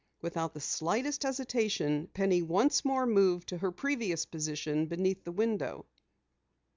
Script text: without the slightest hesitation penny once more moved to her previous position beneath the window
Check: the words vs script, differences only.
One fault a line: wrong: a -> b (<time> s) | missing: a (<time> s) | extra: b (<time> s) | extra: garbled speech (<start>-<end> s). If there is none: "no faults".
no faults